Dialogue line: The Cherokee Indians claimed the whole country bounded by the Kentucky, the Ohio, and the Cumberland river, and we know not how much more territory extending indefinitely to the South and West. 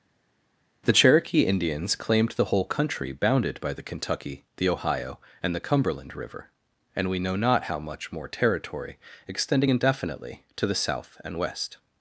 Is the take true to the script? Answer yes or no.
yes